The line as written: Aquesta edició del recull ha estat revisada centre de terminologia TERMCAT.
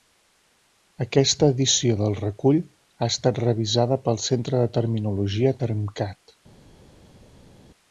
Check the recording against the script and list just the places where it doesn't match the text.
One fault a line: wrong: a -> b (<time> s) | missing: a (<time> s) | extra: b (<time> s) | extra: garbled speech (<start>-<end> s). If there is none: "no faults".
extra: pel (4.1 s)